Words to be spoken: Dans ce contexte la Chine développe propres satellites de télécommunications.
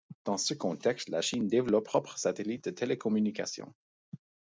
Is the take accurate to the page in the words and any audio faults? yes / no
yes